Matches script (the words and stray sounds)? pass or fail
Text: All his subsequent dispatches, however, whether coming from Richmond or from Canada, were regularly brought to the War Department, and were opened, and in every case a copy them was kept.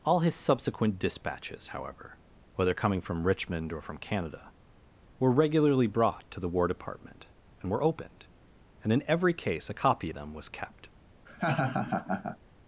fail